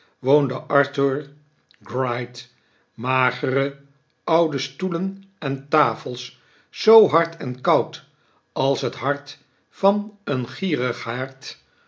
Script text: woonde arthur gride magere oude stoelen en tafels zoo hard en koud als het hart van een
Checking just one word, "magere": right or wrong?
right